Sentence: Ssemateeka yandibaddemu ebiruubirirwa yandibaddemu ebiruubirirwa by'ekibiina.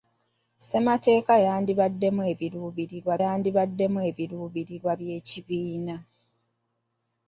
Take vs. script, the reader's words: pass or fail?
pass